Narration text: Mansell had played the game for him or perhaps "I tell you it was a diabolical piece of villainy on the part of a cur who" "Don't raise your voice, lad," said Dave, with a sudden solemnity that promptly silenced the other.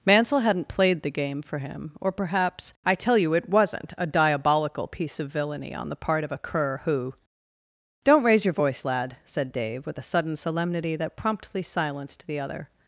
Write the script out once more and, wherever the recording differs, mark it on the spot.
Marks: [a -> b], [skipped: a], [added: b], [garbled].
Mansell [had -> hadn't] played the game for him or perhaps "I tell you it [was -> wasn't] a diabolical piece of villainy on the part of a cur who" "Don't raise your voice, lad," said Dave, with a sudden solemnity that promptly silenced the other.